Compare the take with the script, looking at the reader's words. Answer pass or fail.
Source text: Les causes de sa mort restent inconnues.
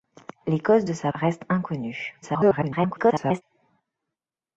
fail